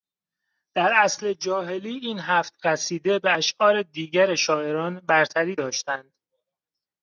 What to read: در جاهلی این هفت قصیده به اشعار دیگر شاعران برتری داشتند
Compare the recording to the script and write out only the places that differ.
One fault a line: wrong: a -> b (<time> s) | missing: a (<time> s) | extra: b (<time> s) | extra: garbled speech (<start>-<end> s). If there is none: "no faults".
extra: عصر (0.9 s)